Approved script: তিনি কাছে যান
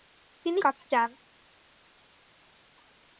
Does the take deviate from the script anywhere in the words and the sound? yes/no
no